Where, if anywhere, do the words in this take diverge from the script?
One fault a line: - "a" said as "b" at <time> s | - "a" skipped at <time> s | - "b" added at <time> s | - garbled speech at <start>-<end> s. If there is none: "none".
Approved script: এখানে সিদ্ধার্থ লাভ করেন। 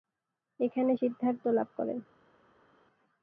none